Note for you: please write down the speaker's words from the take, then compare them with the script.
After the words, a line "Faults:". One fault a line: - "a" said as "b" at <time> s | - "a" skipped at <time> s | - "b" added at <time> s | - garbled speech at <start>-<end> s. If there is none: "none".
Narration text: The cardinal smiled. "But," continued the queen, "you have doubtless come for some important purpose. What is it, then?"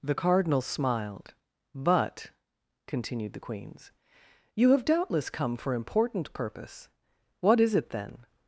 The cardinal smiled. "But," continued the queens, "you have doubtless come for important purpose. What is it, then?"
Faults:
- "queen" said as "queens" at 3.4 s
- "some" skipped at 5.7 s